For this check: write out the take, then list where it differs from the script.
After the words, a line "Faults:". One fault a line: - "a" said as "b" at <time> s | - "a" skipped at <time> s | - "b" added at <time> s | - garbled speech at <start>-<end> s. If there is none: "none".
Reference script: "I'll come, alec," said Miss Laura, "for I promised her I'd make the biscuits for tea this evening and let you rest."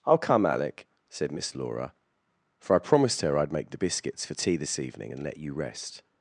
"I'll come, alec," said Miss Laura, "for I promised her I'd make the biscuits for tea this evening and let you rest."
Faults:
none